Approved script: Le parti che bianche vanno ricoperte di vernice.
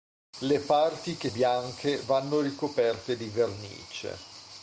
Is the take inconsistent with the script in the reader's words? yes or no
no